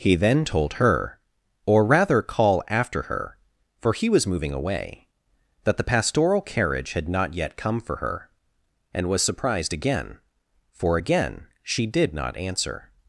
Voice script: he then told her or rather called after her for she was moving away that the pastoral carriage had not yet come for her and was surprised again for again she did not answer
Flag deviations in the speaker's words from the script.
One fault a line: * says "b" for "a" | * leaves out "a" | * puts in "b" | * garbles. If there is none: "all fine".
* says "call" for "called"
* says "he" for "she"